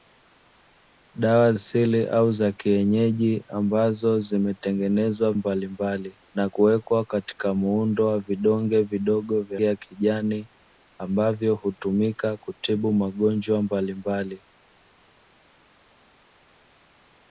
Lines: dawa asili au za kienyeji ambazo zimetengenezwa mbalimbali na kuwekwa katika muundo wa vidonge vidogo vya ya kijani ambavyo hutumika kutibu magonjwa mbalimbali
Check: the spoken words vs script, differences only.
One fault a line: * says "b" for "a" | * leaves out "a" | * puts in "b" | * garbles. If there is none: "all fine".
all fine